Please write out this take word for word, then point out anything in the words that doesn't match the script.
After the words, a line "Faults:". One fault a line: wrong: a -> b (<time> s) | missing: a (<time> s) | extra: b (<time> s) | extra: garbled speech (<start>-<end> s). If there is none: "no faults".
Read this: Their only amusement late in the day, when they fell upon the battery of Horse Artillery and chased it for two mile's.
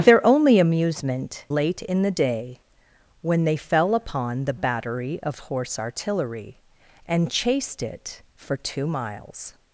Their only amusement late in the day, when they fell upon the battery of Horse Artillery and chased it for two mile's.
Faults:
no faults